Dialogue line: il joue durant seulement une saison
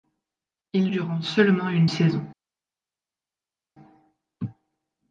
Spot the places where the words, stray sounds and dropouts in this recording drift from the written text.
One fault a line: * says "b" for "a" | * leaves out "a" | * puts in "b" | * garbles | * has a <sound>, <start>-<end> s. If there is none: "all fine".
* leaves out "joue"